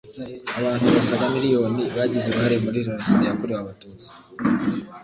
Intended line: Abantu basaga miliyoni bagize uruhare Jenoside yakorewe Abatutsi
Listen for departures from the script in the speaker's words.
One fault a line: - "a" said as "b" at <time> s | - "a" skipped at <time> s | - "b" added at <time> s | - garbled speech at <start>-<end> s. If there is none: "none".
- "muri" added at 2.6 s